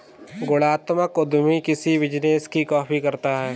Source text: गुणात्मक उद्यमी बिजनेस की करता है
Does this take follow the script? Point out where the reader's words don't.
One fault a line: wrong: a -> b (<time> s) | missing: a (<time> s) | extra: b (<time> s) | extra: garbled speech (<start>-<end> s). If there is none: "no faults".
extra: किसी (1.6 s)
extra: कॉपी (2.6 s)